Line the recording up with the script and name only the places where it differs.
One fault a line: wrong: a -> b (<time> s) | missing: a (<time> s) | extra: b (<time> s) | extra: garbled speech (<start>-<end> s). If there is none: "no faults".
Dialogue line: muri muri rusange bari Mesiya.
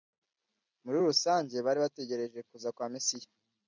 missing: muri (1.0 s)
extra: bategereje kuza kwa (1.8 s)